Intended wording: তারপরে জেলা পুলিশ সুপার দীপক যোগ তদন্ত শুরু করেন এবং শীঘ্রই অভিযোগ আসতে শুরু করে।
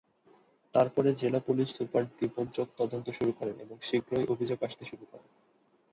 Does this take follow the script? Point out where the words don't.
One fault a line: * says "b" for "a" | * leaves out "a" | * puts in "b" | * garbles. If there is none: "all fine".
all fine